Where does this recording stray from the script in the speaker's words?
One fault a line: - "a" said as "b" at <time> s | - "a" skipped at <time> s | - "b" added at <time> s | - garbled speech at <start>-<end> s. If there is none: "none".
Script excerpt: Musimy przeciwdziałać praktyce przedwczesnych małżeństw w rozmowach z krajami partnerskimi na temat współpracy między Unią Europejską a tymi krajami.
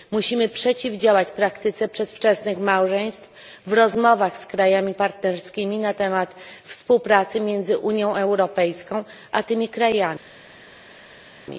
none